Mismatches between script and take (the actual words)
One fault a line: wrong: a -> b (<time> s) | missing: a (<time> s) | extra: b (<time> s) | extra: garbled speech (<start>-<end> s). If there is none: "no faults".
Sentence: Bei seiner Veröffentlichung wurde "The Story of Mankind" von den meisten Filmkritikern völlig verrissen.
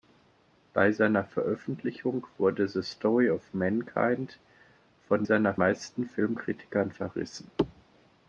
wrong: den -> seiner (5.2 s)
missing: völlig (6.9 s)